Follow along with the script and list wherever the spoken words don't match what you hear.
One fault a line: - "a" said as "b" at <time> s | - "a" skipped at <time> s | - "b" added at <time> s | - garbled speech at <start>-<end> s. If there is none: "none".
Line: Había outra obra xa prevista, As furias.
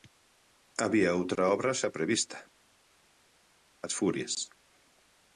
none